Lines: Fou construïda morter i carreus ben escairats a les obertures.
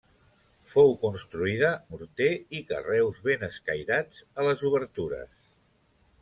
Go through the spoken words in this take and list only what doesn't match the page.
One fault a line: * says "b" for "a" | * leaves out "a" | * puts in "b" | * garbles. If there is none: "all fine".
all fine